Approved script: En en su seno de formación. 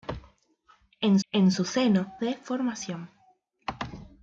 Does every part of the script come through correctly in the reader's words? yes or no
yes